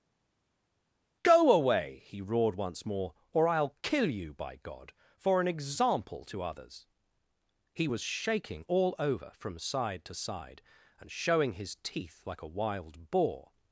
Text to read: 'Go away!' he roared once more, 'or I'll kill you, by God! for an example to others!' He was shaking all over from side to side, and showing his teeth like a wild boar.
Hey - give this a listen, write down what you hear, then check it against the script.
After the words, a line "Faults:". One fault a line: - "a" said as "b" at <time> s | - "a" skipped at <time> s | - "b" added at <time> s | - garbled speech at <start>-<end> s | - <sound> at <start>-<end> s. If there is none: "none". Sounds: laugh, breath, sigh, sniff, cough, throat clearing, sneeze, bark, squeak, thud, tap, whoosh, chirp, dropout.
'Go away!' he roared once more, 'or I'll kill you, by God! for an example to others!' He was shaking all over from side to side, and showing his teeth like a wild boar.
Faults:
none